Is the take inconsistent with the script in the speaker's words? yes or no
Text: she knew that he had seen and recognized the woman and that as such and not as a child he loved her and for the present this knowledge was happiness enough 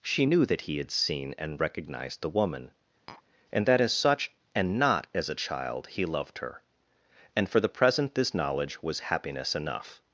no